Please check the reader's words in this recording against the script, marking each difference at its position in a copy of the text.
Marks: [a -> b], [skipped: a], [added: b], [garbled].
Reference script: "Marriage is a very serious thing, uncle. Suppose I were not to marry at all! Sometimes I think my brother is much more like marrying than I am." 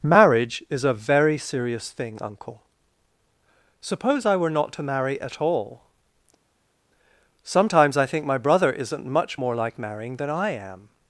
"Marriage is a very serious thing, uncle. Suppose I were not to marry at all! Sometimes I think my brother [is -> isn't] much more like marrying than I am."